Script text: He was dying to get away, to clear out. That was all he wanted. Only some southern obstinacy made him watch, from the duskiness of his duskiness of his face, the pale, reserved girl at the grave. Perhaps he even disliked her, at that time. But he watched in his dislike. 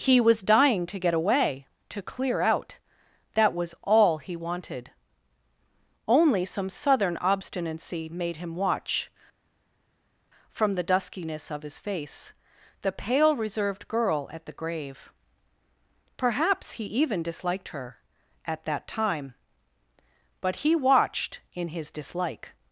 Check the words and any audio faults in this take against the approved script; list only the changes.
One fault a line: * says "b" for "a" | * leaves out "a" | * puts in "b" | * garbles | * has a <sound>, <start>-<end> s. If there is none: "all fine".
* leaves out "duskiness of his"